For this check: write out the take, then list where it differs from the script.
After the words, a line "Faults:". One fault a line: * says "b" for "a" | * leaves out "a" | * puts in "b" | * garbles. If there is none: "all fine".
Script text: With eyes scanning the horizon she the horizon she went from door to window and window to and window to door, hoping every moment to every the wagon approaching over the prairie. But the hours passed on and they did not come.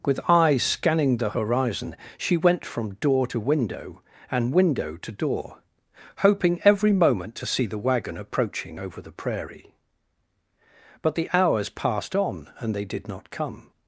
With eyes scanning the horizon she went from door to window and window to door, hoping every moment to see the wagon approaching over the prairie. But the hours passed on and they did not come.
Faults:
* leaves out "the horizon she"
* leaves out "and window to"
* says "see" for "every"